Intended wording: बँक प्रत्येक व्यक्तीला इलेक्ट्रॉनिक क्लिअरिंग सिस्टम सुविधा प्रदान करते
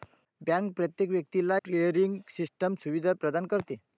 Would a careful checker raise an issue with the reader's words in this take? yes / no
yes